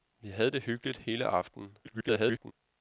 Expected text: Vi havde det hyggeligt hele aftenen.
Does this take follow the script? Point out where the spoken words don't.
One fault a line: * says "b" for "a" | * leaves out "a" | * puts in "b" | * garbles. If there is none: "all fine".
* garbles